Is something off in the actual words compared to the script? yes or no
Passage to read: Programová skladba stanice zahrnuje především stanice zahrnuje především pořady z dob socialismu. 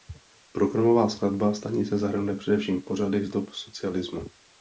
yes